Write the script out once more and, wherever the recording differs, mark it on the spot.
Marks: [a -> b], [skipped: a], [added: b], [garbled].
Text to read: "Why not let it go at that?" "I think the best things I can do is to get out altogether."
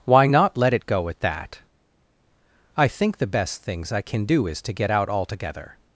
"Why not let it go at that?" "I think the best things I can do is to get out altogether."